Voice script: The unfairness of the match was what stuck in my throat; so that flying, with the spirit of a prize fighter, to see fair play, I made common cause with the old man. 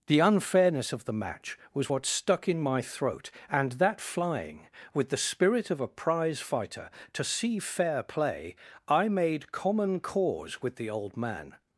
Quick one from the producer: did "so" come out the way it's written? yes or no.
no